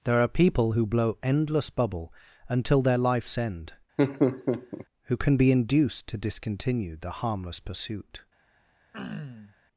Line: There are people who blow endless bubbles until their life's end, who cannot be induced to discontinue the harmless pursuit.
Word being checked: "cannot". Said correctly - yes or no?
no